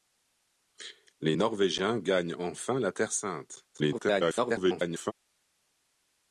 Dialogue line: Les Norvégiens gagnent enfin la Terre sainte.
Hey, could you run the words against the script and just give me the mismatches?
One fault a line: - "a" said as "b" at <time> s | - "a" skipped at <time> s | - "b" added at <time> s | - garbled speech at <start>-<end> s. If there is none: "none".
- garbled speech at 3.7-5.1 s